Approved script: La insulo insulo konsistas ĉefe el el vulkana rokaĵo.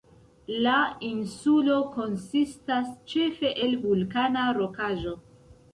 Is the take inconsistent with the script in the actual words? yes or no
yes